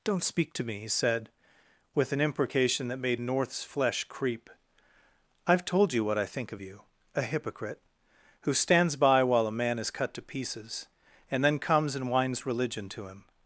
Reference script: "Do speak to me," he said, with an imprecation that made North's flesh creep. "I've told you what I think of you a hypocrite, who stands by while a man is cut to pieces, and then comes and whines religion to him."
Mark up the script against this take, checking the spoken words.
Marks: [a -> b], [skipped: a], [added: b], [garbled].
["Do -> Don't] speak to me," he said, with an imprecation that made North's flesh creep. "I've told you what I think of you a hypocrite, who stands by while a man is cut to pieces, and then comes and whines religion to him."